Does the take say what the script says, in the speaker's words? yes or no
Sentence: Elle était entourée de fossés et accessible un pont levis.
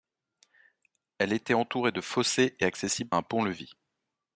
yes